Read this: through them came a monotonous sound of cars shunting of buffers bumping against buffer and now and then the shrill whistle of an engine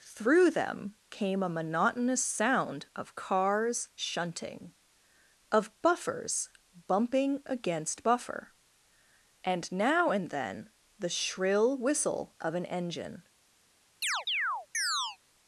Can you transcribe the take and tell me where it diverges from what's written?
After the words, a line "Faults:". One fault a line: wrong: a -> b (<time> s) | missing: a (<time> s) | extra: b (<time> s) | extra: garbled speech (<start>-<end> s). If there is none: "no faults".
through them came a monotonous sound of cars shunting of buffers bumping against buffer and now and then the shrill whistle of an engine
Faults:
no faults